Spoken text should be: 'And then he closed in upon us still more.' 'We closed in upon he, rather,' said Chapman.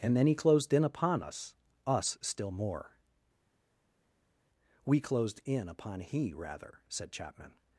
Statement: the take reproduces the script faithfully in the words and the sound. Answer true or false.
false